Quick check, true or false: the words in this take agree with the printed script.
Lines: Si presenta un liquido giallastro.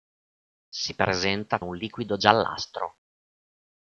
true